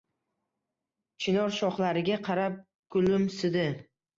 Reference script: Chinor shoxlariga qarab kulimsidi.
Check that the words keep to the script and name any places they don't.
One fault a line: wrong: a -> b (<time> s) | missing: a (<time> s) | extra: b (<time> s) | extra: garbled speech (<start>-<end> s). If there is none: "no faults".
no faults